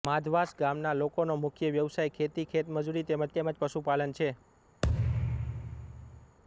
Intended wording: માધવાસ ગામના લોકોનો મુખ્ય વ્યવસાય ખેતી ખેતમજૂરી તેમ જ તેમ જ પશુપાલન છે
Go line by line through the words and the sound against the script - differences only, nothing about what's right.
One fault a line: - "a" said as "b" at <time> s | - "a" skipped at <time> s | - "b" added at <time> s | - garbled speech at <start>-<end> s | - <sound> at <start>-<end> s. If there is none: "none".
- thud at 4.8-6.4 s